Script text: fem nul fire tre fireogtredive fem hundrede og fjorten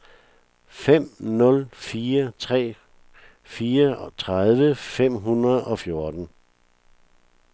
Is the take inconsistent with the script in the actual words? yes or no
no